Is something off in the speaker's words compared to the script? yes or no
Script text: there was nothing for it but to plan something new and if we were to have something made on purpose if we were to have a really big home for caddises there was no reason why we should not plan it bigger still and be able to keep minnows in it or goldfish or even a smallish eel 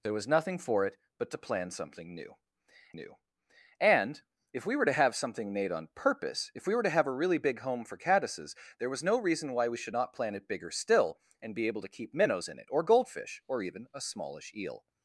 yes